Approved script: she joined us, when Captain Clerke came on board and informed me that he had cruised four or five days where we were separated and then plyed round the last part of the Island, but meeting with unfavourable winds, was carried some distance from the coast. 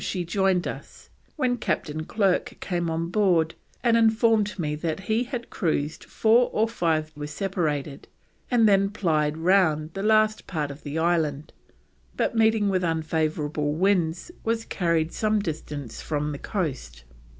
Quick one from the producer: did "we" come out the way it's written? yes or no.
no